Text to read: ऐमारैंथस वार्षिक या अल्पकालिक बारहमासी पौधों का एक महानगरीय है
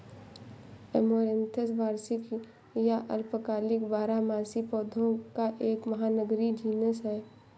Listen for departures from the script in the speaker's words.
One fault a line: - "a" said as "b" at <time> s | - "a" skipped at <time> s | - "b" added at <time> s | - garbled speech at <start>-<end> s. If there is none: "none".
- "जीनस" added at 6.5 s